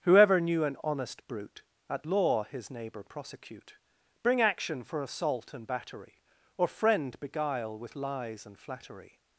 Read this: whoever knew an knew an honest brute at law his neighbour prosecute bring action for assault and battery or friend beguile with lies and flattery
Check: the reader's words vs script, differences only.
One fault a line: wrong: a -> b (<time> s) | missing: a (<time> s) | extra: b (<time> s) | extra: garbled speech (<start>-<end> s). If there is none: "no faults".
missing: knew an (0.8 s)